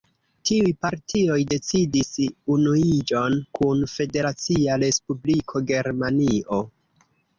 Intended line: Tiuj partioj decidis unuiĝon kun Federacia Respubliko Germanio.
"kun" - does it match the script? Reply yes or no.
yes